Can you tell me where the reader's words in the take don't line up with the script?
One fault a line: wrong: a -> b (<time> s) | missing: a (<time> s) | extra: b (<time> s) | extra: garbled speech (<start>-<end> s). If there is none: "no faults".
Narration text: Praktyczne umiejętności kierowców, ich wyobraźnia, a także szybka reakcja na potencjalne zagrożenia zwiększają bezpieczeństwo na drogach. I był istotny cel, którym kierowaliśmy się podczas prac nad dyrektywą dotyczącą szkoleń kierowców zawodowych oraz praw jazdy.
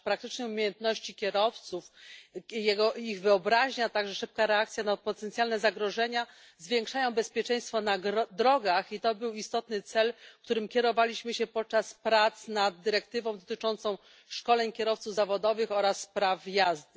extra: to (9.0 s)